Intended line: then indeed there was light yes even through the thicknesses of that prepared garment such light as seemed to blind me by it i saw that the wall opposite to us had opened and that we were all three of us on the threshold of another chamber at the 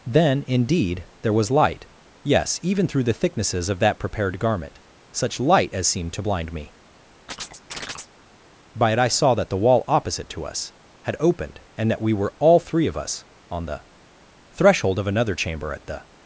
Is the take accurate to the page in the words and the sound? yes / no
no